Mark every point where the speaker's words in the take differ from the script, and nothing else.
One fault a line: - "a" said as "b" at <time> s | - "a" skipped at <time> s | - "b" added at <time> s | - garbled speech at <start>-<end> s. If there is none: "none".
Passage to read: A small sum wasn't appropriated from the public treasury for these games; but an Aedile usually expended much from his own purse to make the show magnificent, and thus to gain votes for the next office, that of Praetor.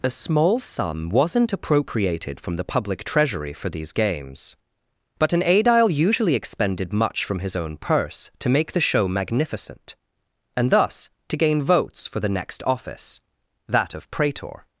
none